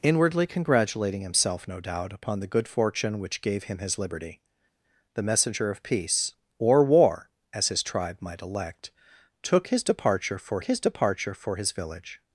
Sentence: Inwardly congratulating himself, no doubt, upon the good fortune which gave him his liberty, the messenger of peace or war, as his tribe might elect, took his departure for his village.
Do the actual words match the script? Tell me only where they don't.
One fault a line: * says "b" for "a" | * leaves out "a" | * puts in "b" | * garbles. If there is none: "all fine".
* puts in "departure for his"